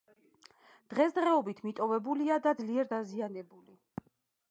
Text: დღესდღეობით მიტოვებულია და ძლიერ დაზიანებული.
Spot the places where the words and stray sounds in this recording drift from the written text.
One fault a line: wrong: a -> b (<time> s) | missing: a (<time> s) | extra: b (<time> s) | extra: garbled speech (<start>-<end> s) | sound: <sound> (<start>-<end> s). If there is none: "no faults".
no faults